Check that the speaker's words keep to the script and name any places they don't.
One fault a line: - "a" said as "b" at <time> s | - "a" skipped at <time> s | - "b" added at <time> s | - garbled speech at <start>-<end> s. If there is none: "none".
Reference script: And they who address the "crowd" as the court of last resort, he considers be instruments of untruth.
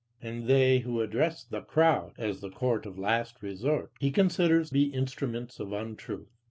none